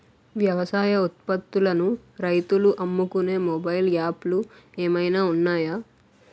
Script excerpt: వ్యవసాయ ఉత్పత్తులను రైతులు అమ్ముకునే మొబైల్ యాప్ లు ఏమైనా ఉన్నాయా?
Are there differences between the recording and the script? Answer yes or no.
no